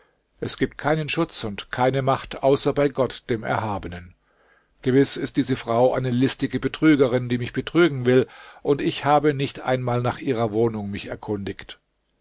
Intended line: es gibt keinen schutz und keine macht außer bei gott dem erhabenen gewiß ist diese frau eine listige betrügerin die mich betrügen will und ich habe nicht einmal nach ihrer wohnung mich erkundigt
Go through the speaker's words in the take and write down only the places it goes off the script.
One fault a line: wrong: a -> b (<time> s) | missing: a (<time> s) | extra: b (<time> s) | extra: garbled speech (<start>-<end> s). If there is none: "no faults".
no faults